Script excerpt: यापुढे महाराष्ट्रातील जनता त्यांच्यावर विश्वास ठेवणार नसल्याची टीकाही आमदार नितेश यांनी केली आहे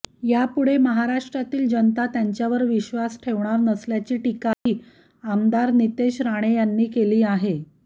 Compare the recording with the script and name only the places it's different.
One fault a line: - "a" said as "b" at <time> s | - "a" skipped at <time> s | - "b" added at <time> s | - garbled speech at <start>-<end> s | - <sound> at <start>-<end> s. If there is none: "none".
- dropout at 4.5-4.7 s
- "राणे" added at 6.2 s